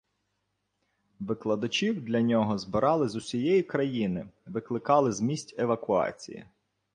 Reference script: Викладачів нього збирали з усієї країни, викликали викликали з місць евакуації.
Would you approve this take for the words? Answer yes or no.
no